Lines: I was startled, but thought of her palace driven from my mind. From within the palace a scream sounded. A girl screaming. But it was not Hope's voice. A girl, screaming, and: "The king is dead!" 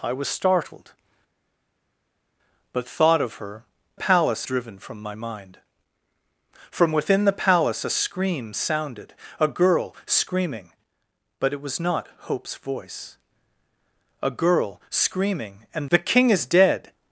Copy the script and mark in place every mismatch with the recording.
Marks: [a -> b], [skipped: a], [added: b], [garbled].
I was startled, but thought of her palace driven from my mind. From within the palace a scream sounded. A girl screaming. But it was not Hope's voice. A girl, screaming, and: "The king is dead!"